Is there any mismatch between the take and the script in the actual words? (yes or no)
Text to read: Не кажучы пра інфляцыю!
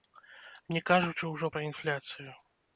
yes